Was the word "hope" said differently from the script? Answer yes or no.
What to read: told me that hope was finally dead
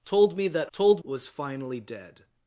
yes